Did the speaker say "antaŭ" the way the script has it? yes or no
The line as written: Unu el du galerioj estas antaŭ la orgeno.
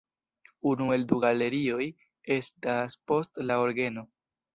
no